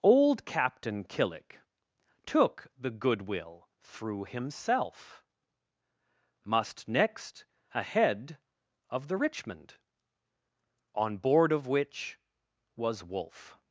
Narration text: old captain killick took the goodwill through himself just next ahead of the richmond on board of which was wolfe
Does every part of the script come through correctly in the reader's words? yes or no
no